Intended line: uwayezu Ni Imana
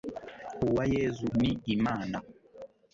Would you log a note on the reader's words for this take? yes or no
no